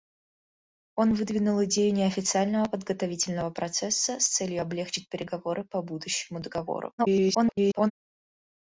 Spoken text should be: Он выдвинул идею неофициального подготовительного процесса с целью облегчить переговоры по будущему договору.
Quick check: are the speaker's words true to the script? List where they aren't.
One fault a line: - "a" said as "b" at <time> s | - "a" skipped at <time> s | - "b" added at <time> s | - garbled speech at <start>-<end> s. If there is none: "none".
- garbled speech at 7.0-7.9 s